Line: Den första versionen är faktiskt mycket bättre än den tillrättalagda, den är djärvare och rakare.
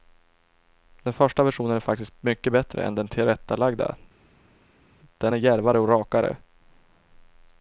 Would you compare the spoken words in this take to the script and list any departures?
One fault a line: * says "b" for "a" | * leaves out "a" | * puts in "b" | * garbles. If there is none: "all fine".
all fine